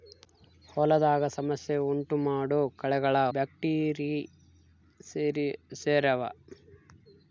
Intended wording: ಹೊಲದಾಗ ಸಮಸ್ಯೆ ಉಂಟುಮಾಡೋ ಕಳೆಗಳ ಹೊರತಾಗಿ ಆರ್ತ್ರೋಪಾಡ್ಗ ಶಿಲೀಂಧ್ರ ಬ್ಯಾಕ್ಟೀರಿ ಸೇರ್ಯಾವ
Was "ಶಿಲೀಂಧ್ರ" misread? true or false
true